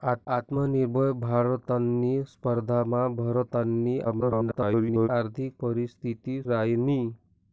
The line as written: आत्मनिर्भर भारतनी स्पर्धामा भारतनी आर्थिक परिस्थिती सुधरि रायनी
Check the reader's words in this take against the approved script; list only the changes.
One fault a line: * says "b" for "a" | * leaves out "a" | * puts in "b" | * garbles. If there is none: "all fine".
* garbles
* leaves out "सुधरि"